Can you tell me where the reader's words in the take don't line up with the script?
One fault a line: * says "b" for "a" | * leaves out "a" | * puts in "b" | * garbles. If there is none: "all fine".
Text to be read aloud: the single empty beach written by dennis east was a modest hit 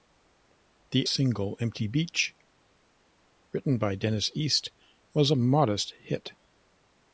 all fine